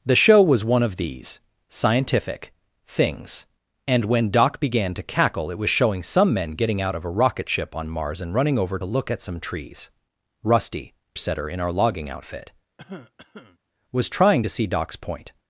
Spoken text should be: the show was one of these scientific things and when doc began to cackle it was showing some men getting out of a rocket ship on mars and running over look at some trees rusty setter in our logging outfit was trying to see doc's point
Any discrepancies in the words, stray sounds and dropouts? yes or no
yes